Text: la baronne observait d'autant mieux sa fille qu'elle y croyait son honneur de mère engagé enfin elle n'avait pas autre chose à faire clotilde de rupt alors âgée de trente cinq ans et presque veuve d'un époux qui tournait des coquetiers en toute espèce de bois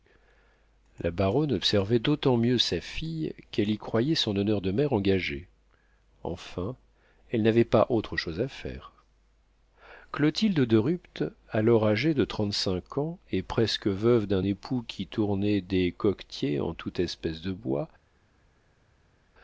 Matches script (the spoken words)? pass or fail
pass